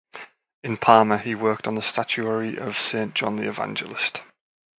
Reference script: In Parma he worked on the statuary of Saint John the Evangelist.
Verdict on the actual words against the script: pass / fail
pass